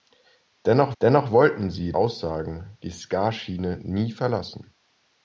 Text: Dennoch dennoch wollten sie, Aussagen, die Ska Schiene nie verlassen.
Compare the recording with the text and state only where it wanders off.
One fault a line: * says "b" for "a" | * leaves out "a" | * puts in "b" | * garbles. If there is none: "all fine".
all fine